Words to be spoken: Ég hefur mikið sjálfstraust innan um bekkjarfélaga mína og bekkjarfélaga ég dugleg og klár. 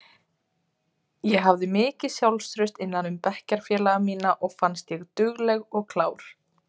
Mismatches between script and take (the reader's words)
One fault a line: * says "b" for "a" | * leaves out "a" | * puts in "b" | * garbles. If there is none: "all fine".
* says "hafði" for "hefur"
* says "fannst" for "bekkjarfélaga"